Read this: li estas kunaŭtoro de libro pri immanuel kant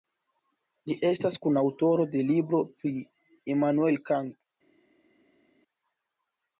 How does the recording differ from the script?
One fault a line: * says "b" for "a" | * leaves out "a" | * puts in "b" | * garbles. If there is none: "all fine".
all fine